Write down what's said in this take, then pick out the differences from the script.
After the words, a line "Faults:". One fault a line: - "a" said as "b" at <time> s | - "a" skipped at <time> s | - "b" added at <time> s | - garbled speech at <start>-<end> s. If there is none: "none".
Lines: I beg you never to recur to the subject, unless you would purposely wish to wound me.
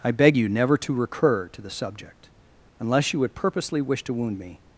I beg you never to recur to the subject, unless you would purposely wish to wound me.
Faults:
none